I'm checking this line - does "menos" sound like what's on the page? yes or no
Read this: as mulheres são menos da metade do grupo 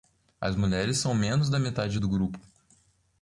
yes